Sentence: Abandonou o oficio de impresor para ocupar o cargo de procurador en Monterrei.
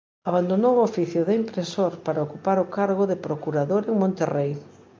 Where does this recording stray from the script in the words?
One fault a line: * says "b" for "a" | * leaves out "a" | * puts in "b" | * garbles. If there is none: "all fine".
all fine